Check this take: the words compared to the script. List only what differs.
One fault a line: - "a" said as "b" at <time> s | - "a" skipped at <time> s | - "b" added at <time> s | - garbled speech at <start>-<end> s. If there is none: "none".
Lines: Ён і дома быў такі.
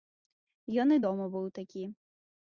none